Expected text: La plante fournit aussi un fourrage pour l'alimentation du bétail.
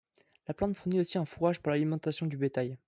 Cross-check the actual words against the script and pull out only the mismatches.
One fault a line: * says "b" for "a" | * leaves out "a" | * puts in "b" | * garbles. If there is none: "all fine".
all fine